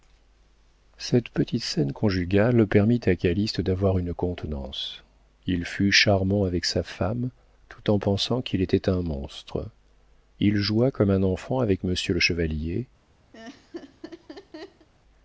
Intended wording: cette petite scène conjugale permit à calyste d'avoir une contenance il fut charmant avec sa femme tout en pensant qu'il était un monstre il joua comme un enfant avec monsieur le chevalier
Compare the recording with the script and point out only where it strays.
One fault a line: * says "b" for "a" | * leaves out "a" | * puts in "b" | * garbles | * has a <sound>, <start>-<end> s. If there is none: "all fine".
* has a laugh, 13.3-14.9 s